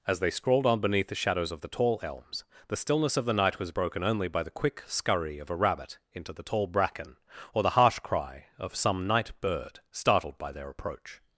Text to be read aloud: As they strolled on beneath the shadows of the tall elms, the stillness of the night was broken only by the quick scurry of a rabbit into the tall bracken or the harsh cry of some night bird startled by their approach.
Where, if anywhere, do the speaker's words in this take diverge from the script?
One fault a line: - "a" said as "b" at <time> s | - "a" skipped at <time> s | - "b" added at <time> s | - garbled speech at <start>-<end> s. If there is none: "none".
- "strolled" said as "scrawled" at 0.3 s